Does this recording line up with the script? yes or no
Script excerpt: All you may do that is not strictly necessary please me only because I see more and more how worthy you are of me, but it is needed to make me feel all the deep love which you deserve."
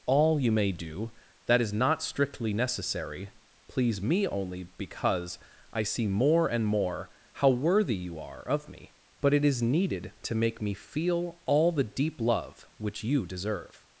yes